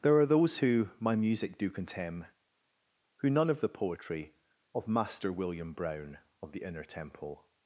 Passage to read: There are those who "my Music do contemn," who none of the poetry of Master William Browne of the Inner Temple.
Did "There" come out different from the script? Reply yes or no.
no